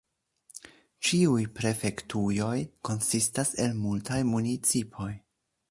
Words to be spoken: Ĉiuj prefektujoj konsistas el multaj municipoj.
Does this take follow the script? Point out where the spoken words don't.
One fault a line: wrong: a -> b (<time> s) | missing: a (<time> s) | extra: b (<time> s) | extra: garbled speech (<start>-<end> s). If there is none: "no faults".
no faults